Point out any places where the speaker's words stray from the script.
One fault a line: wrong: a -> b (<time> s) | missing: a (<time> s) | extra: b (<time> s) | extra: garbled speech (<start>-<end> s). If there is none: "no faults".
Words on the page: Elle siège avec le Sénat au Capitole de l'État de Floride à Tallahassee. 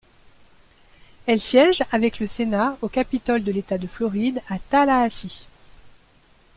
no faults